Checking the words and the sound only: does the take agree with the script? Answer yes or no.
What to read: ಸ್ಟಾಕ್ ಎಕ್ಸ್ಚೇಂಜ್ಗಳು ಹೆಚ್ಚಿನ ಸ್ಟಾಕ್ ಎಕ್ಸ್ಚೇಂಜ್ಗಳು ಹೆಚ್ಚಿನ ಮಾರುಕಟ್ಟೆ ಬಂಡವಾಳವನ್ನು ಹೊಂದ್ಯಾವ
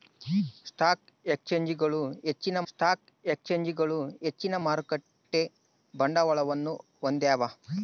yes